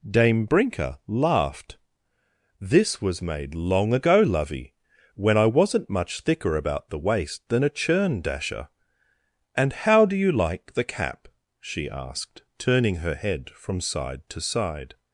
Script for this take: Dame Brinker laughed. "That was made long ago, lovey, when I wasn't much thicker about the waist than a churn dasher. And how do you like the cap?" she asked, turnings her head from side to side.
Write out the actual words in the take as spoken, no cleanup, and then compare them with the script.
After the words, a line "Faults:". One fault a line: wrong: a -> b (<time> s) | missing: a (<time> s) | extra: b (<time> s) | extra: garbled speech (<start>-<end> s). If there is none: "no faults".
Dame Brinker laughed. "This was made long ago, lovey, when I wasn't much thicker about the waist than a churn dasher. And how do you like the cap?" she asked, turning her head from side to side.
Faults:
wrong: That -> This (2.6 s)
wrong: turnings -> turning (12.6 s)